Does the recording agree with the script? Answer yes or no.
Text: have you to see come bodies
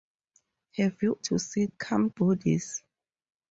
yes